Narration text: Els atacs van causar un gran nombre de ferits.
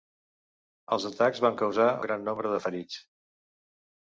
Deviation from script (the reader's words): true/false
true